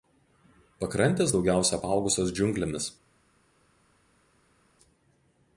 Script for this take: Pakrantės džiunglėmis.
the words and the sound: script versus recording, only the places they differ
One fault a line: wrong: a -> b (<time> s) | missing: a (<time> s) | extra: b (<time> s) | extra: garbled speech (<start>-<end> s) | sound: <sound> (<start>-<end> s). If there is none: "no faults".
extra: daugiausia apaugusios (1.3 s)